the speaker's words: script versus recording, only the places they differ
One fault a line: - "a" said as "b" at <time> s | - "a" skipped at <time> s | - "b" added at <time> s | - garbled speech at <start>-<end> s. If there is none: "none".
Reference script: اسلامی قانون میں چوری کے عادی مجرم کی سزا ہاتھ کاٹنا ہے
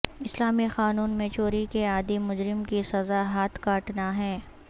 none